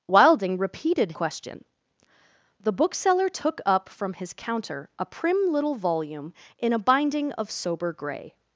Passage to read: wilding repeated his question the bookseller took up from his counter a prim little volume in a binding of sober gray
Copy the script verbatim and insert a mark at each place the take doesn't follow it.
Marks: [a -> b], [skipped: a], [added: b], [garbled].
wilding repeated [skipped: his] question the bookseller took up from his counter a prim little volume in a binding of sober gray